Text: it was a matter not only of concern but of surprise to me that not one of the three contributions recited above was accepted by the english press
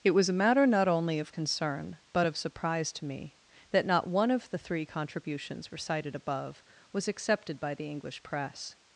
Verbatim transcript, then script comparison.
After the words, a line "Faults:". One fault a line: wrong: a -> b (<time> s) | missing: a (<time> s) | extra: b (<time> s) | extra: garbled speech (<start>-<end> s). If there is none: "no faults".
it was a matter not only of concern but of surprise to me that not one of the three contributions recited above was accepted by the english press
Faults:
no faults